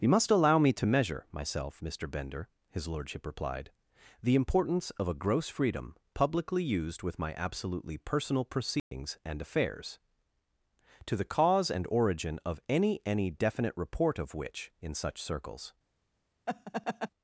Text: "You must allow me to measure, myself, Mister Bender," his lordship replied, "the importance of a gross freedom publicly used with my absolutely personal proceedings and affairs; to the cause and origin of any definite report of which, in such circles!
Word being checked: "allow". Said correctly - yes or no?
yes